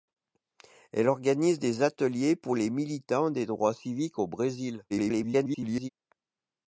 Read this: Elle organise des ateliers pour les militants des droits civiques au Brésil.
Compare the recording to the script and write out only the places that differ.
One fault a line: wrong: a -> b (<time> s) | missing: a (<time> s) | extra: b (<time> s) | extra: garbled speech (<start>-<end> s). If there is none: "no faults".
extra: garbled speech (4.9-5.9 s)